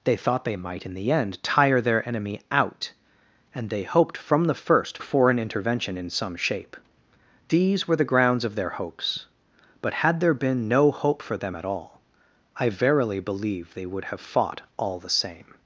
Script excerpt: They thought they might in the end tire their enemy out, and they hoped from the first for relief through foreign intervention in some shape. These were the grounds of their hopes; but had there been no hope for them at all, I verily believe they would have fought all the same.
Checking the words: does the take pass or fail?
fail